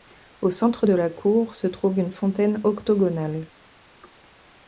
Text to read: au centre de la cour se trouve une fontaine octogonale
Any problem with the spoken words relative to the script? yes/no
no